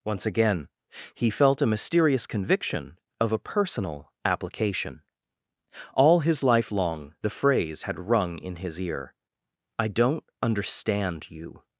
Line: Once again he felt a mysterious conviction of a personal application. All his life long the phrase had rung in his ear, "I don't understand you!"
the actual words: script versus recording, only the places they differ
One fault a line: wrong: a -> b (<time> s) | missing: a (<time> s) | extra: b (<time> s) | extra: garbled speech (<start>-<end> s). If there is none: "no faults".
no faults